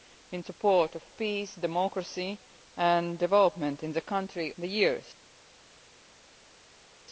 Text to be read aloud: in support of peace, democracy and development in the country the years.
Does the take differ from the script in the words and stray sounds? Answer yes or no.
no